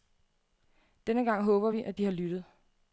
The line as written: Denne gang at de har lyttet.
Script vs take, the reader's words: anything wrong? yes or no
yes